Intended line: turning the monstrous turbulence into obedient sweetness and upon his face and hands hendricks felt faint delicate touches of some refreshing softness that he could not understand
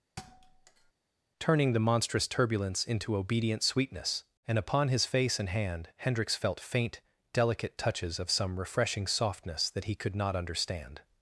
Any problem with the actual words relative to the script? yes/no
yes